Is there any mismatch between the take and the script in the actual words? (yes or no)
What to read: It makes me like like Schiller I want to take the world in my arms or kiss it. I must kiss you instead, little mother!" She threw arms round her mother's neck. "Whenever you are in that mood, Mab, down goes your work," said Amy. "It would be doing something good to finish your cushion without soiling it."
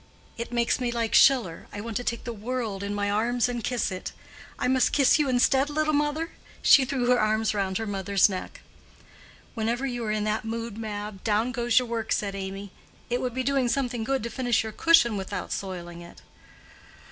yes